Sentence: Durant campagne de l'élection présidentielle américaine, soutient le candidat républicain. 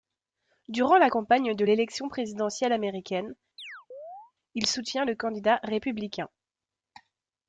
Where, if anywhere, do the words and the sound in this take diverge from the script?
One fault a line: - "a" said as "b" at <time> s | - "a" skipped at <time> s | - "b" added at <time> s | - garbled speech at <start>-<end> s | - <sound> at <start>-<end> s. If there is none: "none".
- "la" added at 1.0 s
- chirp at 3.6-4.3 s
- "il" added at 4.5 s